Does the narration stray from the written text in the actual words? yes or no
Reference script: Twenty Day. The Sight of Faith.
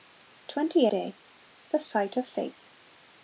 no